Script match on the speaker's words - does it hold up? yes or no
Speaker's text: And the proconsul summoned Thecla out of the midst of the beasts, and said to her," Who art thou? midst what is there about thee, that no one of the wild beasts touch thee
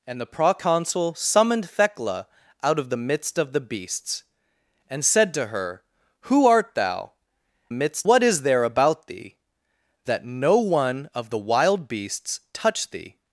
yes